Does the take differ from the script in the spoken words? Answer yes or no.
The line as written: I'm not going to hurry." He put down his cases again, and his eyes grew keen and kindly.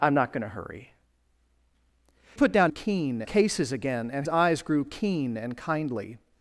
yes